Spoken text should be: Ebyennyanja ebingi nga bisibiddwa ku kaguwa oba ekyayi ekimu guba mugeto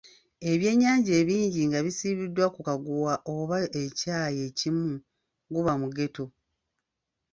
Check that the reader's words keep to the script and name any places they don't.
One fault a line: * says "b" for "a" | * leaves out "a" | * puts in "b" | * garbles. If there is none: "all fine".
all fine